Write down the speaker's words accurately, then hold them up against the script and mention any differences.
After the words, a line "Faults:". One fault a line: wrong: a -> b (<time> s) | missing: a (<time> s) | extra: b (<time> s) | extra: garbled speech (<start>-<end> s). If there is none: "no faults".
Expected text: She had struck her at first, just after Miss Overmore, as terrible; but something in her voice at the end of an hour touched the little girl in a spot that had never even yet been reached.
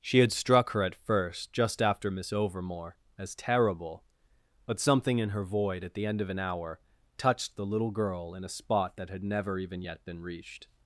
She had struck her at first, just after Miss Overmore, as terrible; but something in her void at the end of an hour touched the little girl in a spot that had never even yet been reached.
Faults:
wrong: voice -> void (5.4 s)